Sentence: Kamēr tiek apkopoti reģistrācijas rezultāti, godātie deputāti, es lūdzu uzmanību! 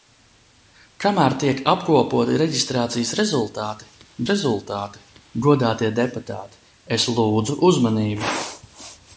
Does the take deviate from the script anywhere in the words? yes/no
yes